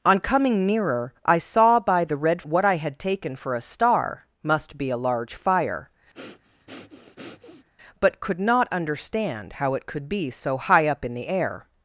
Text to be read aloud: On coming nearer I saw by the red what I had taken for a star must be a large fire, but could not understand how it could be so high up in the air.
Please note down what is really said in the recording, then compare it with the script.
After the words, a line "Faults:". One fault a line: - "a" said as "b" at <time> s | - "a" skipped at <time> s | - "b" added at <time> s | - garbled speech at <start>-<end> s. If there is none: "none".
On coming nearer I saw by the red what I had taken for a star must be a large fire, but could not understand how it could be so high up in the air.
Faults:
none